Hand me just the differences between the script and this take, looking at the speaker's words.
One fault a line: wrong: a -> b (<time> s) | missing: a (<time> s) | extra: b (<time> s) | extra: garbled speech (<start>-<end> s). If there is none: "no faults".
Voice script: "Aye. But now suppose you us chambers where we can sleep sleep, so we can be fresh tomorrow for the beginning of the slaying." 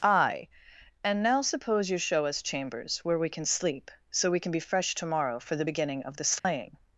wrong: But -> And (1.0 s)
extra: show (2.0 s)
missing: sleep (3.9 s)